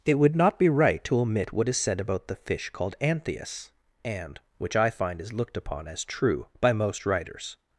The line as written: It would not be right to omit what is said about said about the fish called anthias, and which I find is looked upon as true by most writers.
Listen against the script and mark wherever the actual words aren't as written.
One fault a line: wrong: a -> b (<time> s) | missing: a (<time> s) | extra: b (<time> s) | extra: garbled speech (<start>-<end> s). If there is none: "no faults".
missing: said about (2.3 s)